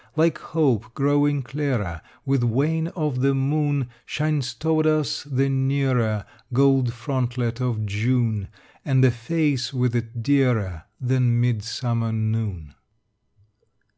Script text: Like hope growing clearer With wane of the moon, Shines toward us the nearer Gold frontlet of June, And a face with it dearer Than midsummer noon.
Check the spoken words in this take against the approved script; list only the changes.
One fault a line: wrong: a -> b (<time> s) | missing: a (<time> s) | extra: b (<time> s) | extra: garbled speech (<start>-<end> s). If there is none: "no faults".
no faults